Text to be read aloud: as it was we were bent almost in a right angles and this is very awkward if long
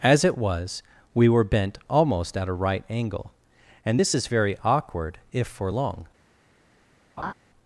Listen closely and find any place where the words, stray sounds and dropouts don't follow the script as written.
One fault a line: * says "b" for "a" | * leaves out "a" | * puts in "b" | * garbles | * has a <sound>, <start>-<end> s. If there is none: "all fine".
* says "at" for "in"
* says "angle" for "angles"
* puts in "for"
* has a laugh, 7.2-7.3 s